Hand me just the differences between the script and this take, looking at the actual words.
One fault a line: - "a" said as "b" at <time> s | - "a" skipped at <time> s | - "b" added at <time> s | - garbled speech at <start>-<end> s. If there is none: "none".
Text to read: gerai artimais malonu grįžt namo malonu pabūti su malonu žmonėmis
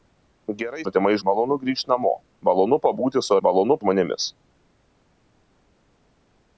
none